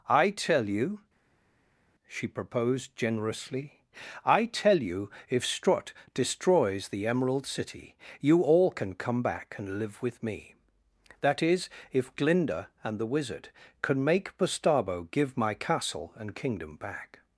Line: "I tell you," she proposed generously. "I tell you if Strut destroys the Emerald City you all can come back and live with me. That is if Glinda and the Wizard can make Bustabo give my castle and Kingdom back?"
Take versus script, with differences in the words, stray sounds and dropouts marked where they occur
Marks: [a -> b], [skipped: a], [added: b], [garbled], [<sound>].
"I tell you," she proposed generously. "I tell you if Strut destroys the Emerald City you all can come back and live with me. That is if Glinda and the Wizard can make Bustabo give my castle and Kingdom back?"